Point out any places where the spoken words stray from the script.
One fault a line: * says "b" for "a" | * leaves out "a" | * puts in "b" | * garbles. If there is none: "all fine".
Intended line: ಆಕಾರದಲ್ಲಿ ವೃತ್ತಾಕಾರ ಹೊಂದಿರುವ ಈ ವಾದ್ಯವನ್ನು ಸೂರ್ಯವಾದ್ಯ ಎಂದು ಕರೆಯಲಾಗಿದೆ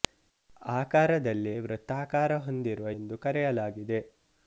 * leaves out "ಈ ವಾದ್ಯವನ್ನು ಸೂರ್ಯವಾದ್ಯ"